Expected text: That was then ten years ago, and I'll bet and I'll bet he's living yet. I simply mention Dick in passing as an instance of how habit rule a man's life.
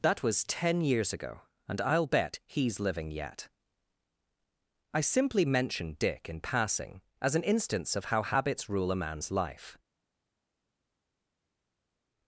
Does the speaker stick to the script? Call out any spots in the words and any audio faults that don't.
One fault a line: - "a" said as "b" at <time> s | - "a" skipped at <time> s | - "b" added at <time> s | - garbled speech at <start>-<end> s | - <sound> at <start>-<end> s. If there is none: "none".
- "then" skipped at 0.4 s
- "and I'll bet" skipped at 2.4 s
- "habit" said as "habits" at 8.2 s